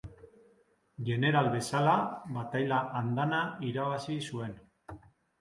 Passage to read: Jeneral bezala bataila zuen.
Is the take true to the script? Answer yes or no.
no